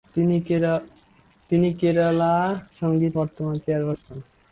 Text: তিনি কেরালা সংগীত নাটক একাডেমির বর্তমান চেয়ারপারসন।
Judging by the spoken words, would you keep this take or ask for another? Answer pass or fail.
fail